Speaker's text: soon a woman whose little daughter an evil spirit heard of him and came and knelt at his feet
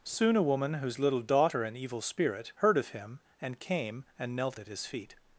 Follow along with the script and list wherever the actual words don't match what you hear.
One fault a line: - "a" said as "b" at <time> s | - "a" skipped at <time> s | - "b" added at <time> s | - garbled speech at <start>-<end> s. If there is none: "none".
none